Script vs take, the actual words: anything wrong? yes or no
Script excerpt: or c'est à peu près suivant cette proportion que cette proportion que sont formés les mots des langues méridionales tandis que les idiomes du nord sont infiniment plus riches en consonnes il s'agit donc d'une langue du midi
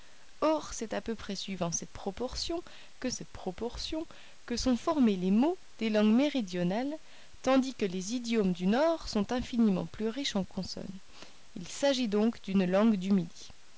no